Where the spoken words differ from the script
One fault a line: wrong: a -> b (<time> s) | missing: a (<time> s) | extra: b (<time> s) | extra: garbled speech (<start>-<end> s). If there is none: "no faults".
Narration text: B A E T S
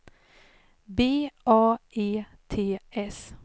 no faults